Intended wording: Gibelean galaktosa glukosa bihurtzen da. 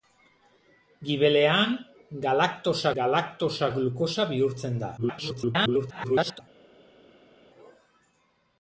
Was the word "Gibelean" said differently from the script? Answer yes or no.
no